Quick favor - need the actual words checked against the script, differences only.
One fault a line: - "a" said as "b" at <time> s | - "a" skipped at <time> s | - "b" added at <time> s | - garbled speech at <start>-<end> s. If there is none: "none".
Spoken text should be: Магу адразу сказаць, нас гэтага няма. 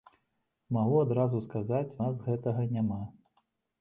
none